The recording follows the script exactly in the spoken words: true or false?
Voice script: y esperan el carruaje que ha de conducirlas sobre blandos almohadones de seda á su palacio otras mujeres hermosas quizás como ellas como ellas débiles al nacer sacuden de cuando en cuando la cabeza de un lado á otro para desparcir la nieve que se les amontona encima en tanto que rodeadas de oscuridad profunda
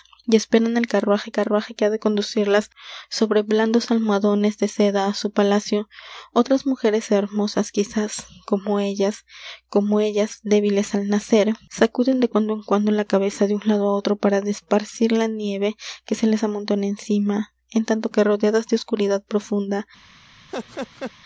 false